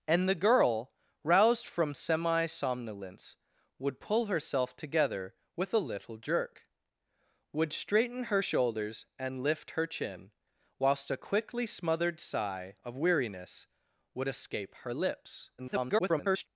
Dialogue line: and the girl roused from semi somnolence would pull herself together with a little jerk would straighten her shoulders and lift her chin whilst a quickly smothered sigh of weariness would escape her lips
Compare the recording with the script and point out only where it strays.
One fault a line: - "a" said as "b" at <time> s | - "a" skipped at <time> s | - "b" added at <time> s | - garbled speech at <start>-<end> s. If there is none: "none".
- garbled speech at 15.6-16.5 s